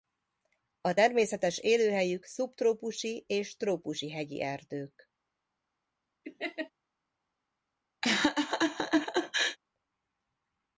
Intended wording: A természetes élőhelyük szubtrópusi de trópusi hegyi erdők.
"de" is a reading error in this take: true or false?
true